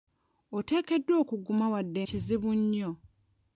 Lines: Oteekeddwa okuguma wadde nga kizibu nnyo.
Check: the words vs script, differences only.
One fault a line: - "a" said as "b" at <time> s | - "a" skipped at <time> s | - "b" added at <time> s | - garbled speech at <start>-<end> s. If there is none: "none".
- "nga" skipped at 2.0 s